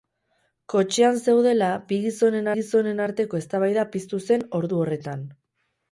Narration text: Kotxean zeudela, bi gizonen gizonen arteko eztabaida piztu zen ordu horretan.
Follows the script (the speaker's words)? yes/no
yes